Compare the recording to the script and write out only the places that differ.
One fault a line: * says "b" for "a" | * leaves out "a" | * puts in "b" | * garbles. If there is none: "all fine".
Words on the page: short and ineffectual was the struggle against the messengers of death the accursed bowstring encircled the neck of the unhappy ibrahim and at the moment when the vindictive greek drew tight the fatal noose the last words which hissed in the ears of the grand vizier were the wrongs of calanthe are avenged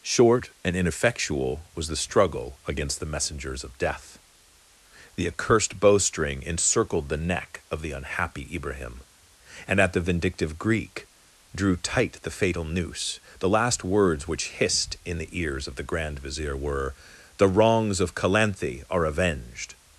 * leaves out "moment when the"